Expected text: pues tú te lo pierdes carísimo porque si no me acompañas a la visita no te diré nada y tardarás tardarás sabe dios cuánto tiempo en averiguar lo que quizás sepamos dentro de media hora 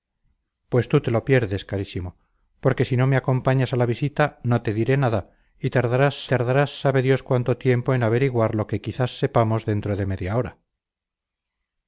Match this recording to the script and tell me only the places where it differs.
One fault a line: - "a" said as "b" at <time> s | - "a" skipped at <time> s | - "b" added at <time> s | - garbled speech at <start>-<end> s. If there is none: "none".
none